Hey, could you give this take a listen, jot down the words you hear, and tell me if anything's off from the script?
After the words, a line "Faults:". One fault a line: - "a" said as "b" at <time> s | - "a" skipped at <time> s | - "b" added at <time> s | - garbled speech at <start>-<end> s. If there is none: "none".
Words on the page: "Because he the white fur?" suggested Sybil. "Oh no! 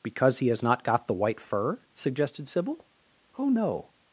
"Because he has not got the white fur?" suggested Sybil. "Oh no!
Faults:
- "has not got" added at 0.5 s